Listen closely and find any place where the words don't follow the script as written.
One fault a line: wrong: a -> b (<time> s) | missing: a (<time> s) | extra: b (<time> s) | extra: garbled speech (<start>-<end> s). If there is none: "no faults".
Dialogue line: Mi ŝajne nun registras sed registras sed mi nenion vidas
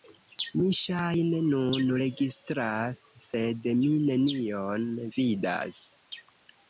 missing: registras sed (3.7 s)